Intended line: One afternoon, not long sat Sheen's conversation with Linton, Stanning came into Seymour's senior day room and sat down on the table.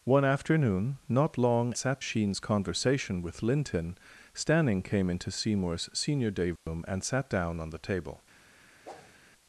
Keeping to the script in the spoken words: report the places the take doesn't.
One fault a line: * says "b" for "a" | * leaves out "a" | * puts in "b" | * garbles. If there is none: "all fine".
all fine